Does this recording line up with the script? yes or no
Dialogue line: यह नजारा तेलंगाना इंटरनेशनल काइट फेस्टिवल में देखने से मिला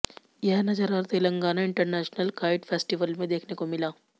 no